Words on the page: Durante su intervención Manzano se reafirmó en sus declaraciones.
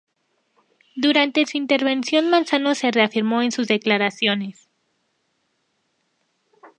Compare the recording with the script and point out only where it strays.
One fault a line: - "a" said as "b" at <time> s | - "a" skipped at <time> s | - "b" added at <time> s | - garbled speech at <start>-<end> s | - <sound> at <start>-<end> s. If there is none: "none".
none